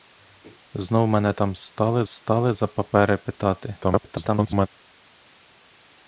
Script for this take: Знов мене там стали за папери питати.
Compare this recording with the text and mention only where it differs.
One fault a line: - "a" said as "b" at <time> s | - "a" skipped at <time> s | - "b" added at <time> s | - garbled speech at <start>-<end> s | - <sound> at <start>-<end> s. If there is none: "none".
- "стали" added at 2.1 s
- garbled speech at 3.8-4.7 s